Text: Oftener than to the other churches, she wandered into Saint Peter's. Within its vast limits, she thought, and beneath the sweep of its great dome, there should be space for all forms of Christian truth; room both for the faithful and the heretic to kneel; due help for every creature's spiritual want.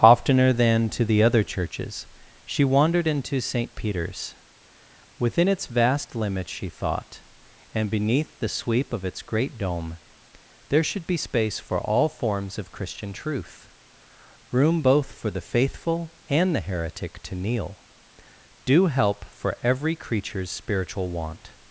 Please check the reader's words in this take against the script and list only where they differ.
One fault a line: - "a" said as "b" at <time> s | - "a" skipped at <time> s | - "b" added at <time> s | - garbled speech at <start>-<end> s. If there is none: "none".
none